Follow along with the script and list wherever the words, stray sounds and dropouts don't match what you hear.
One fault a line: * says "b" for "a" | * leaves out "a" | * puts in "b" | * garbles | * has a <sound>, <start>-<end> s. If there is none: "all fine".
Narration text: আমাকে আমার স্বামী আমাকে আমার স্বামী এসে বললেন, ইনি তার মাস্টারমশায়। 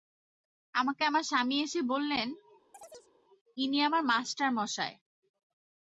* leaves out "আমাকে আমার স্বামী"
* has a chirp, 2.7-3.1 s
* says "আমার" for "তার"